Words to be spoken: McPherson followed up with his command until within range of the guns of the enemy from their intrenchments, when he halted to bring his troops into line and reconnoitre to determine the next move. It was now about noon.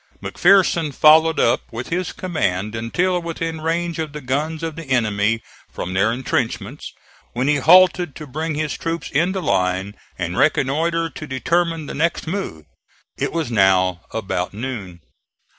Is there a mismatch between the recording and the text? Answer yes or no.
no